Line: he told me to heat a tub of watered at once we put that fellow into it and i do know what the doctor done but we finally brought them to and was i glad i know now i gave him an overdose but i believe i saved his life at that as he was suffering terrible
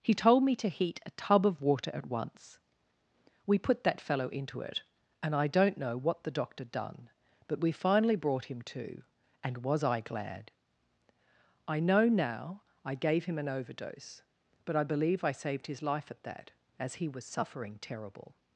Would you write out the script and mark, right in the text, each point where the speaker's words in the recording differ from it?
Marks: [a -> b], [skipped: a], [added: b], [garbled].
he told me to heat a tub of [watered -> water] at once we put that fellow into it and i [do -> don't] know what the doctor done but we finally brought [them -> him] to and was i glad i know now i gave him an overdose but i believe i saved his life at that as he was suffering terrible